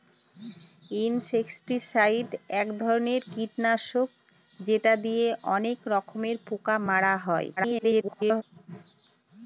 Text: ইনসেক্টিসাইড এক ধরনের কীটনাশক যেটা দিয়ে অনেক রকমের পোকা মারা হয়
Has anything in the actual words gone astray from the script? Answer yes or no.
yes